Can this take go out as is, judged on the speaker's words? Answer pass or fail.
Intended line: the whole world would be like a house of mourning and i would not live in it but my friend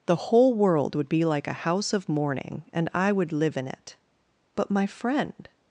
fail